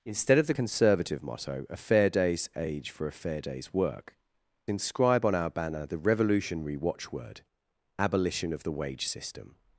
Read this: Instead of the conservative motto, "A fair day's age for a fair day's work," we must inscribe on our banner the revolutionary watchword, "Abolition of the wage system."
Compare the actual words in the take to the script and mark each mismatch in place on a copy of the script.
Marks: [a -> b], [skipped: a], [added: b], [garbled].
Instead of the conservative motto, "A fair day's age for a fair day's work," [skipped: we must] inscribe on our banner the revolutionary watchword, "Abolition of the wage system."